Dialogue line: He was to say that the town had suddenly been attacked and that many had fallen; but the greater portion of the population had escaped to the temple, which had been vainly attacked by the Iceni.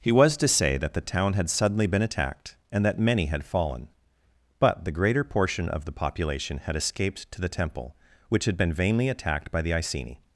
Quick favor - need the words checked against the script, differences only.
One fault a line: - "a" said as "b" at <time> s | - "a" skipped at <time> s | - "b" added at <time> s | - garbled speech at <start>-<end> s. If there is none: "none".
none